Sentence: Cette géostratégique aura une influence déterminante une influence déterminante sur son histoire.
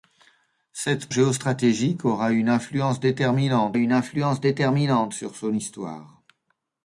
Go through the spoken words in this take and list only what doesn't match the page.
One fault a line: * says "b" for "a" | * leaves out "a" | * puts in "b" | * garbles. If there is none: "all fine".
all fine